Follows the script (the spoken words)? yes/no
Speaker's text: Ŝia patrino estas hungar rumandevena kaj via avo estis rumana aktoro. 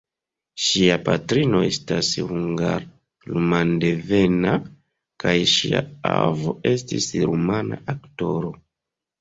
no